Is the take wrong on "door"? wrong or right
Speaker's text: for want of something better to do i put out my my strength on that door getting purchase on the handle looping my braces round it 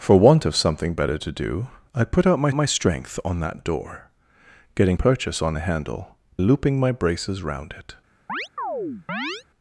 right